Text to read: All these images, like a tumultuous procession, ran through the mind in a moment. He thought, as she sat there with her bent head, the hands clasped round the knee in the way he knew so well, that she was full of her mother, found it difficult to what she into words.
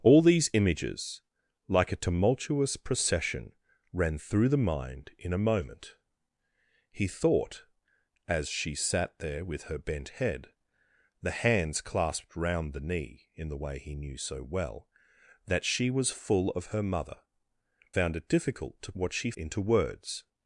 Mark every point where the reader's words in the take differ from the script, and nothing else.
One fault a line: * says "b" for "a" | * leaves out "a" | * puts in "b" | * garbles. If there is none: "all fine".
all fine